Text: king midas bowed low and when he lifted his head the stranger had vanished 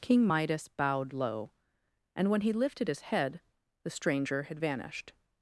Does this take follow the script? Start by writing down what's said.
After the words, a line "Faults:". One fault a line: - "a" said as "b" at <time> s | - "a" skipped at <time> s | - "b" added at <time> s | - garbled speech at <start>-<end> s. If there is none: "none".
king midas bowed low and when he lifted his head the stranger had vanished
Faults:
none